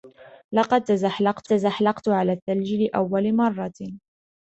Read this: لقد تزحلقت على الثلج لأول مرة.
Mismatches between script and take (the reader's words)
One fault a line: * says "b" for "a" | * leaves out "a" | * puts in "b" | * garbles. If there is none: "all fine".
* puts in "تزحلقت"